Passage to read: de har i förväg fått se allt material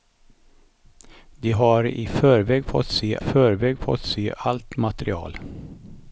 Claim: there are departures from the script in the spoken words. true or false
true